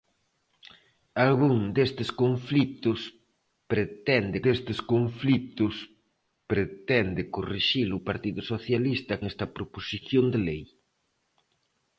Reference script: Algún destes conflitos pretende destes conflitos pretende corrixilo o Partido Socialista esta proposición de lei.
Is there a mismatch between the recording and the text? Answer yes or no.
no